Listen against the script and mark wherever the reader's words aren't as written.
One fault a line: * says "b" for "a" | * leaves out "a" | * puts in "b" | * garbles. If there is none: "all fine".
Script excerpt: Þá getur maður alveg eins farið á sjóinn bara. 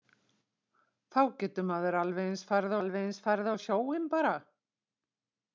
* puts in "alveg eins farið"